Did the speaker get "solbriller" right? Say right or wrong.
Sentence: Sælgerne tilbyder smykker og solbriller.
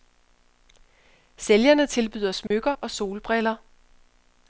right